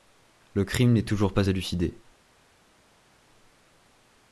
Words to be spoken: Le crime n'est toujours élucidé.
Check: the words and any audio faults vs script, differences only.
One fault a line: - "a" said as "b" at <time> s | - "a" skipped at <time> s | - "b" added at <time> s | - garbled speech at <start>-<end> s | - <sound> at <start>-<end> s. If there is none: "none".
- "pas" added at 1.3 s